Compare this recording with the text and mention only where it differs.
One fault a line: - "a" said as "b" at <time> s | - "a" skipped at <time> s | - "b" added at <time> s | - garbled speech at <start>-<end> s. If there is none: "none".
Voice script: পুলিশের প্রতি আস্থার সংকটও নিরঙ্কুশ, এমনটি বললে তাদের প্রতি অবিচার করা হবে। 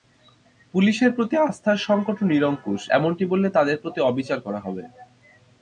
none